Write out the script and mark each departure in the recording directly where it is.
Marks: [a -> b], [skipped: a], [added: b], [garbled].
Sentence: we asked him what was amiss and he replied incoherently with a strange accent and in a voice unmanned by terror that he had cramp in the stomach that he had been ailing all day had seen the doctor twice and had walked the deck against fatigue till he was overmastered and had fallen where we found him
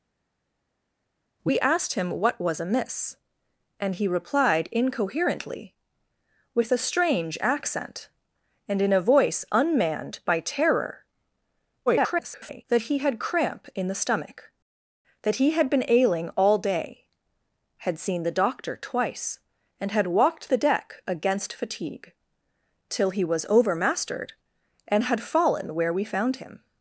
we asked him what was amiss and he replied incoherently with a strange accent and in a voice unmanned by terror [garbled] that he had cramp in the stomach that he had been ailing all day had seen the doctor twice and had walked the deck against fatigue till he was overmastered and had fallen where we found him